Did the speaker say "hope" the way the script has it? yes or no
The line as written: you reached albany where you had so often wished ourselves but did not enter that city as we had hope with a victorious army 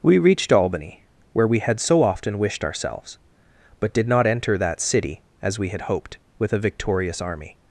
no